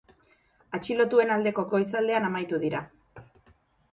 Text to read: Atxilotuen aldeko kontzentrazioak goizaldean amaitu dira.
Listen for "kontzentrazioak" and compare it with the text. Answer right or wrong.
wrong